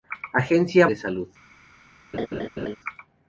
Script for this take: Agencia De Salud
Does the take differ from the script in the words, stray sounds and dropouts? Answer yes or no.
yes